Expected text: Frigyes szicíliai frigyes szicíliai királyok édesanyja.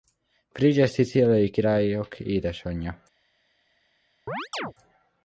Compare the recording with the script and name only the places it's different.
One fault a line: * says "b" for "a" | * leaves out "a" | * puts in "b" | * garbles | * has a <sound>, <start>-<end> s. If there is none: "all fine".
* leaves out "frigyes szicíliai"
* has a chirp, 4.3-4.7 s